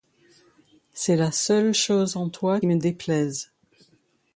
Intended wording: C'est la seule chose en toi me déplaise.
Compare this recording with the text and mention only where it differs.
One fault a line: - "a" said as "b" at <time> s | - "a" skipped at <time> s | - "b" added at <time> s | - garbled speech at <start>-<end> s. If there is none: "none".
none